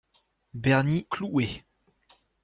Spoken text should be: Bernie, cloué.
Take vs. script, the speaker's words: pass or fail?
pass